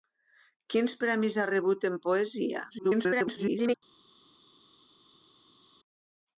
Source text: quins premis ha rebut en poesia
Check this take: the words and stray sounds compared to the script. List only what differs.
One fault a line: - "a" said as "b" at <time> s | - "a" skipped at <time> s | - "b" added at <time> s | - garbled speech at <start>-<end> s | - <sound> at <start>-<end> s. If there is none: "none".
- garbled speech at 2.7-3.8 s